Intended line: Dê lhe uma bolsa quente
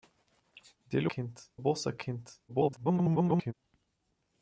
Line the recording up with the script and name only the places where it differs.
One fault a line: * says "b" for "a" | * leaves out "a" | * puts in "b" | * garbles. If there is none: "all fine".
* says "quente" for "uma"
* garbles